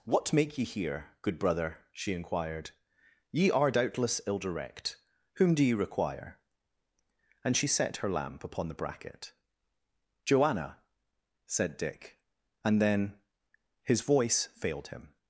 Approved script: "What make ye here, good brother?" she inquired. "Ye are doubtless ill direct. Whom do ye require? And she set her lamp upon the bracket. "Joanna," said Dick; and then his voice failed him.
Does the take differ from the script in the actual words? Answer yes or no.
no